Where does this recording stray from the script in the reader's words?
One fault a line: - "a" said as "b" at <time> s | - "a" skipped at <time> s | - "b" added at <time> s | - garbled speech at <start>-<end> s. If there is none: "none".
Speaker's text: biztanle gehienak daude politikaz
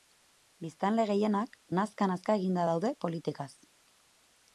- "nazka nazka eginda" added at 1.8 s